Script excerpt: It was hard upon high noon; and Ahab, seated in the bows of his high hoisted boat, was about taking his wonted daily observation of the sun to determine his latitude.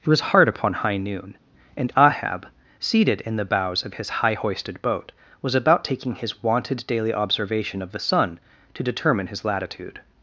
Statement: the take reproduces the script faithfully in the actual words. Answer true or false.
true